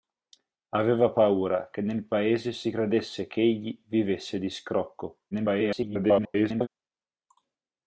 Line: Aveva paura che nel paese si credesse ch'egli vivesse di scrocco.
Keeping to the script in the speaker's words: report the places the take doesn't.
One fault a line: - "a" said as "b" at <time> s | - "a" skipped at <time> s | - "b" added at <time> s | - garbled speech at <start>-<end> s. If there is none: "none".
- garbled speech at 5.3-6.7 s